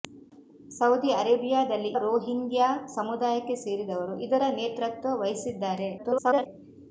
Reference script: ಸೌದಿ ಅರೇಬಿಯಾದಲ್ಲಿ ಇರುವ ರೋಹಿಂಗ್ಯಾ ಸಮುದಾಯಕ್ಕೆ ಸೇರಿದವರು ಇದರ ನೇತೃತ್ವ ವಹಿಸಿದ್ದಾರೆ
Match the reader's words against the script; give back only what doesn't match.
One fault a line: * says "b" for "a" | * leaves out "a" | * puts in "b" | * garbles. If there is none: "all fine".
* leaves out "ಇರುವ"
* garbles